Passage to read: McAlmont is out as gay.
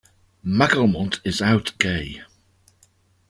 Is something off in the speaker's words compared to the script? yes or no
yes